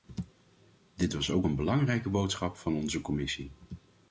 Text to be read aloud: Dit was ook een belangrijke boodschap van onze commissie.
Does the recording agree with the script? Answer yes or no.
yes